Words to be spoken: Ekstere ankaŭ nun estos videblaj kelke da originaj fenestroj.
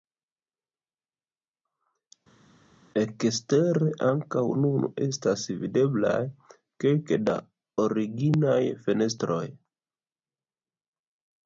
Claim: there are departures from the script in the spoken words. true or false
true